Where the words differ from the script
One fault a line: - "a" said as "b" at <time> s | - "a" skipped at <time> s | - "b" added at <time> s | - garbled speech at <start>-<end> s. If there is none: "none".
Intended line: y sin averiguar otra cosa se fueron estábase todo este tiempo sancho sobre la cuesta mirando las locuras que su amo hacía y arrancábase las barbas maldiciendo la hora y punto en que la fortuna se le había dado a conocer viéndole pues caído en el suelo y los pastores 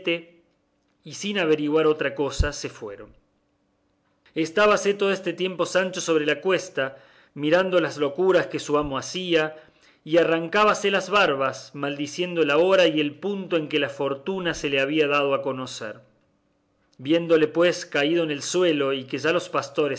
- "el" added at 13.0 s
- "que ya" added at 19.1 s